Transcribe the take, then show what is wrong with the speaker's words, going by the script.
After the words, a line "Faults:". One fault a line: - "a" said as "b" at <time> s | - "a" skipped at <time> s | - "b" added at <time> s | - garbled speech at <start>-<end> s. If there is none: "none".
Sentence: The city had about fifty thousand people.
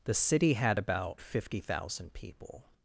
The city had about fifty thousand people.
Faults:
none